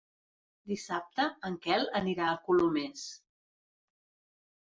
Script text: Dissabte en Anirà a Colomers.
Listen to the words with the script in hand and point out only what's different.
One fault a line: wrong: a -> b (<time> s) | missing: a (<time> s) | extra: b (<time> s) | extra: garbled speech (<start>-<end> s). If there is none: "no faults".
extra: Quel (1.6 s)